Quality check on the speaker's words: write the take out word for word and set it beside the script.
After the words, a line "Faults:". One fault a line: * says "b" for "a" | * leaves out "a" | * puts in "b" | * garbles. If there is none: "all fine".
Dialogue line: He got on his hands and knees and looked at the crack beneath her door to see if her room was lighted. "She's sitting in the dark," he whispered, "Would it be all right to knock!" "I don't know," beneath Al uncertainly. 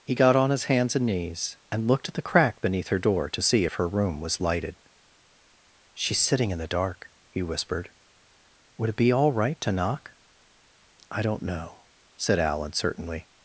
He got on his hands and knees and looked at the crack beneath her door to see if her room was lighted. "She's sitting in the dark," he whispered, "Would it be all right to knock!" "I don't know," said Al uncertainly.
Faults:
* says "said" for "beneath"